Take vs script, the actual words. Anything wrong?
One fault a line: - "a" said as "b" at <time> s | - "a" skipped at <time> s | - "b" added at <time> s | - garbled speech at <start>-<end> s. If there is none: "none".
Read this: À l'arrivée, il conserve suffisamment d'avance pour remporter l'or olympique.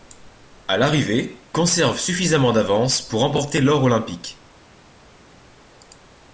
- "il" skipped at 1.4 s